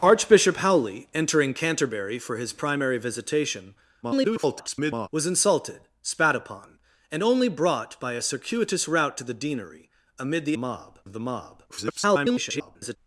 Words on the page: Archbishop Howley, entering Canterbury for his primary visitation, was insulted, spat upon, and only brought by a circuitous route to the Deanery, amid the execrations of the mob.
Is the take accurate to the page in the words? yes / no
no